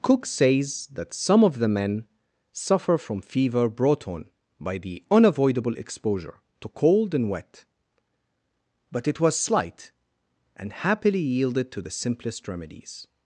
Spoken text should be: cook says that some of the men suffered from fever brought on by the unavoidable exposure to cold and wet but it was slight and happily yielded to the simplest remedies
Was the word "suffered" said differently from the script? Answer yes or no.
yes